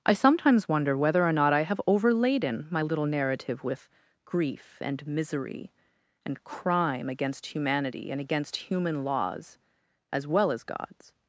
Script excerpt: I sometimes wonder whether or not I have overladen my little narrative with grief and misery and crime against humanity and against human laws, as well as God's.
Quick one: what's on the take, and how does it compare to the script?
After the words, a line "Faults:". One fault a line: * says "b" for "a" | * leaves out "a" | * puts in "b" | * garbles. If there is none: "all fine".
I sometimes wonder whether or not I have overladen my little narrative with grief and misery and crime against humanity and against human laws, as well as God's.
Faults:
all fine